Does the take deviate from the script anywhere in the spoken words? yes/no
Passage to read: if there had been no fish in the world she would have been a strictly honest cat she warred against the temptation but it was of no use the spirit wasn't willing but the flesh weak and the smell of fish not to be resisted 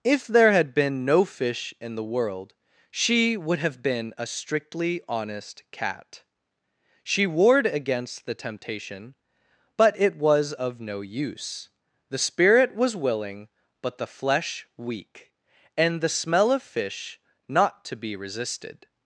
yes